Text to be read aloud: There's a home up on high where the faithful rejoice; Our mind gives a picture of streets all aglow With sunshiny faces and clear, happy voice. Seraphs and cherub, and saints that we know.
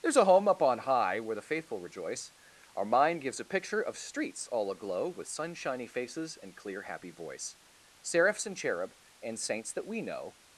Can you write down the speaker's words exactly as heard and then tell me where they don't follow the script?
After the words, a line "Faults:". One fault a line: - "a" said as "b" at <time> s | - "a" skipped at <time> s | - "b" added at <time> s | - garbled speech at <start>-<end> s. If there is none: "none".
There's a home up on high where the faithful rejoice; Our mind gives a picture of streets all aglow With sunshiny faces and clear, happy voice. Seraphs and cherub, and saints that we know.
Faults:
none